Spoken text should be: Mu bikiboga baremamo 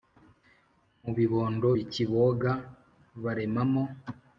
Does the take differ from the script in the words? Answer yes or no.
yes